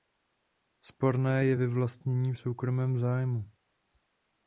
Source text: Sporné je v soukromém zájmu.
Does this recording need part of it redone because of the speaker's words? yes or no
yes